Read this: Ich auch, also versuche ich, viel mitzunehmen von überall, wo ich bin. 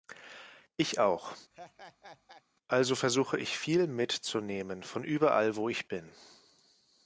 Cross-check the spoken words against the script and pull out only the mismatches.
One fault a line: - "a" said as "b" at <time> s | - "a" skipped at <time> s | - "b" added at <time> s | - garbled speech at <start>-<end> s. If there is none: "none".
none